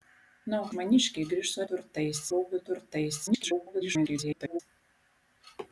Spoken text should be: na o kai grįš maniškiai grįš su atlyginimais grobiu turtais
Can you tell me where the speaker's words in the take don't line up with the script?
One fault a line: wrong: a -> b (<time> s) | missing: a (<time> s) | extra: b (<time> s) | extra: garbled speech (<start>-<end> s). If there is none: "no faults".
missing: kai grįš (0.7 s)
wrong: atlyginimais -> turtais (1.7 s)
extra: garbled speech (3.3-4.6 s)